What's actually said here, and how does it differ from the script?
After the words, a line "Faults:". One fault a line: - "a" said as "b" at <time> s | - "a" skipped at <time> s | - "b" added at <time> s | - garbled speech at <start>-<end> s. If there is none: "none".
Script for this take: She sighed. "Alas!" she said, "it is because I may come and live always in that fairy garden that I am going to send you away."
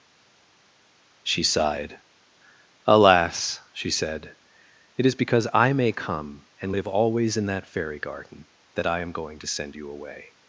She sighed. "Alas!" she said, "it is because I may come and live always in that fairy garden that I am going to send you away."
Faults:
none